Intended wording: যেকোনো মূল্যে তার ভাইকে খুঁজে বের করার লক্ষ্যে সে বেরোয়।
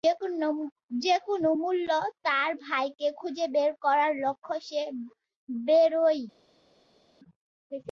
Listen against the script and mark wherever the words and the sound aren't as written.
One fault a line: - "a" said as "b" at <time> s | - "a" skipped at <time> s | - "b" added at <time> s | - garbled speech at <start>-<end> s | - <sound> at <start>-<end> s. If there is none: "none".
none